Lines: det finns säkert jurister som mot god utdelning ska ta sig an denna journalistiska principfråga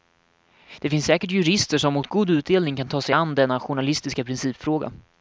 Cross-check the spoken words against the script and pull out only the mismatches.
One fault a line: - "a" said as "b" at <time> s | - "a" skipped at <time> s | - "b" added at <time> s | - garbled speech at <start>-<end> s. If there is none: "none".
- "ska" said as "kan" at 2.8 s